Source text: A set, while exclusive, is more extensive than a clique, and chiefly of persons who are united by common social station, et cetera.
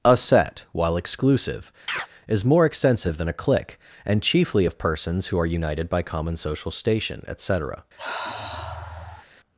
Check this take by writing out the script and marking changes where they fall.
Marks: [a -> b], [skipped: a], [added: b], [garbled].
A set, while exclusive, is more extensive than a clique, and chiefly of persons who are united by common social station, et cetera.